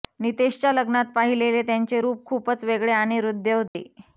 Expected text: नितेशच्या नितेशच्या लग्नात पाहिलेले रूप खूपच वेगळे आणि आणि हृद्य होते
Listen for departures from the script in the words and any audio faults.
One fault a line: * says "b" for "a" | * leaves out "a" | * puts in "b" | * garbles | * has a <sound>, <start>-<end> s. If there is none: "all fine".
* leaves out "नितेशच्या"
* puts in "त्यांचे"
* leaves out "आणि"
* has a dropout, 3.7-3.7 s